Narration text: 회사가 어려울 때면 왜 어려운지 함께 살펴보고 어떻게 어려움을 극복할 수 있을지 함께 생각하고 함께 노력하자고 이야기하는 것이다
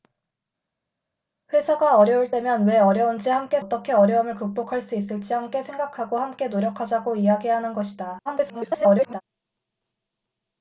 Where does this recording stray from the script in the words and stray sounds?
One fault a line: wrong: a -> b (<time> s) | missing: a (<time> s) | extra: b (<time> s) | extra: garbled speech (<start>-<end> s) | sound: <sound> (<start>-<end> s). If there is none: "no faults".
missing: 살펴보고 (3.6 s)
extra: garbled speech (8.3-9.2 s)